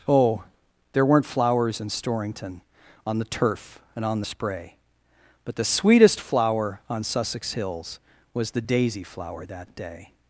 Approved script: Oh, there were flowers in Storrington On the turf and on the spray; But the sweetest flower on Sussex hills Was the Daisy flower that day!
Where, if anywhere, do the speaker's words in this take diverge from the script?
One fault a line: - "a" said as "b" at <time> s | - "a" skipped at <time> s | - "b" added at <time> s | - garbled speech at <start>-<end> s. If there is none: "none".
- "were" said as "weren't" at 1.1 s